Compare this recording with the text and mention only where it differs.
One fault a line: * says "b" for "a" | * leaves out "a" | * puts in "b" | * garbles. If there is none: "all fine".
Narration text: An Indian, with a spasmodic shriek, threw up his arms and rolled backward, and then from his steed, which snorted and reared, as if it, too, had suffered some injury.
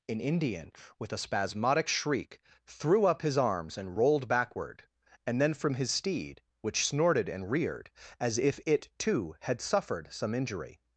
all fine